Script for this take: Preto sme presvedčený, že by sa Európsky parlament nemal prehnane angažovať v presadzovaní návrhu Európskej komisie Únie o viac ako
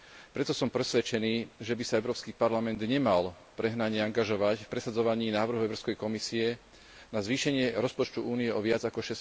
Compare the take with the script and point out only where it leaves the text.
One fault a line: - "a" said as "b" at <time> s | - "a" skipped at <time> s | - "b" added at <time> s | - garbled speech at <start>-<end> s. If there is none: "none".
- "sme" said as "som" at 0.6 s
- "na zvýšenie rozpočtu" added at 7.1 s